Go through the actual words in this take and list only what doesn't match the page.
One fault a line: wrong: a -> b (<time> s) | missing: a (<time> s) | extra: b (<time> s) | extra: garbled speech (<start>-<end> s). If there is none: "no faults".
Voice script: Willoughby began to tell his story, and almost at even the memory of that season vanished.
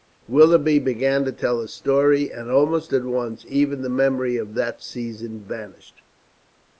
extra: once (3.0 s)